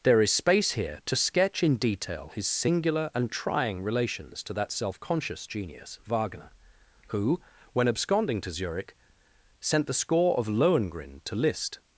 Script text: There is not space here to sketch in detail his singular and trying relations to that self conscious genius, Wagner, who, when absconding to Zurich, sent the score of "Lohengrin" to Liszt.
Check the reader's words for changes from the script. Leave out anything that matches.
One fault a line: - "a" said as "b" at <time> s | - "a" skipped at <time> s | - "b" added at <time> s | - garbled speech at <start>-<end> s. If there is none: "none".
- "not" skipped at 0.3 s